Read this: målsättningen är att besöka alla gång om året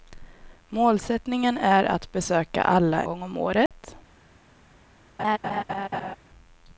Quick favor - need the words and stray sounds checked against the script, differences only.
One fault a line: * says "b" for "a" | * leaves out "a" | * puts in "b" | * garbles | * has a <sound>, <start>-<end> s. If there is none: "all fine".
* has a dropout, 3.7-3.7 s
* has a laugh, 5.2-6.2 s